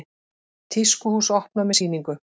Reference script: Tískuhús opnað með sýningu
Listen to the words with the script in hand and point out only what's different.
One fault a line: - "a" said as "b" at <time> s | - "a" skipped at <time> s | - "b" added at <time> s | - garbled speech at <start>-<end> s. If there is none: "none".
none